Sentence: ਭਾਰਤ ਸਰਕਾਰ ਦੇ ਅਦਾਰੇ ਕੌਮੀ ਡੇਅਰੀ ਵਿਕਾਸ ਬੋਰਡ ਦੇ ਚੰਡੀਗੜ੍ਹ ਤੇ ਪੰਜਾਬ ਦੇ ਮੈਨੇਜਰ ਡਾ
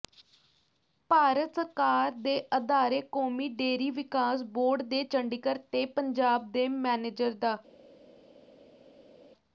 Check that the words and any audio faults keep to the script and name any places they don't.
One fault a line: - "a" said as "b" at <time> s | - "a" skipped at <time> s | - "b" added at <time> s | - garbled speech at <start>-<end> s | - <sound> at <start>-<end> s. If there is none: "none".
none